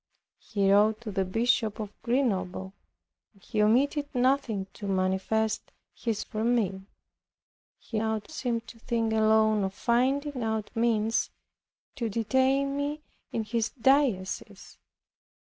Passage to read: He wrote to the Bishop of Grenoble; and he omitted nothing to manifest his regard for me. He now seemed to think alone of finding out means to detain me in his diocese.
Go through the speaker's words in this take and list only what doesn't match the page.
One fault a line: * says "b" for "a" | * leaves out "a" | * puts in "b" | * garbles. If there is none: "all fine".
* leaves out "regard"
* says "out" for "now"